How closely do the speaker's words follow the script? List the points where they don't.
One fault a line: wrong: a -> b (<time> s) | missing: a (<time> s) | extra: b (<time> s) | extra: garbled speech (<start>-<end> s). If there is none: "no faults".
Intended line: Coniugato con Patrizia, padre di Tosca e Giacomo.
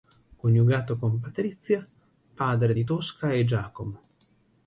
no faults